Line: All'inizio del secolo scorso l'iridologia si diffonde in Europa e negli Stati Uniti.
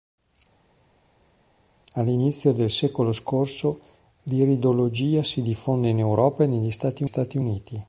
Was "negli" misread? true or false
false